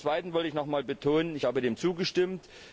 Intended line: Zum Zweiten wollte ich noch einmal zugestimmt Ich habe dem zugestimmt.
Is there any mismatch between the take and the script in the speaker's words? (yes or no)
yes